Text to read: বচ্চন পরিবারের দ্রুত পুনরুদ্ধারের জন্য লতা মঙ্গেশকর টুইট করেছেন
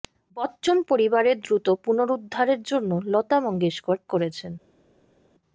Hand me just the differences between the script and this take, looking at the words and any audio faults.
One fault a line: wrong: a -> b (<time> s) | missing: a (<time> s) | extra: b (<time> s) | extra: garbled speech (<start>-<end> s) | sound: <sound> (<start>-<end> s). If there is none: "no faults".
missing: টুইট (4.0 s)